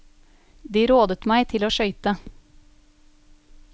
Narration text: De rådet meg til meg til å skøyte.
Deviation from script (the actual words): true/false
true